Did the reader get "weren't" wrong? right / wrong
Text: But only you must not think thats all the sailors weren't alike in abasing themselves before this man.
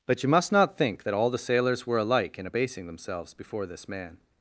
wrong